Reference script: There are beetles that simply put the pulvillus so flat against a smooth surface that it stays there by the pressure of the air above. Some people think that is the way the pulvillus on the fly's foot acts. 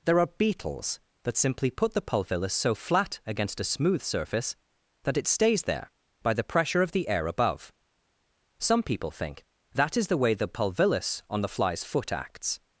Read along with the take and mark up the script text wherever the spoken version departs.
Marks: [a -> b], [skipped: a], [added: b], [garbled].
There are beetles that simply put the pulvillus so flat against a smooth surface that it stays there by the pressure of the air above. Some people think that is the way the pulvillus on the fly's foot acts.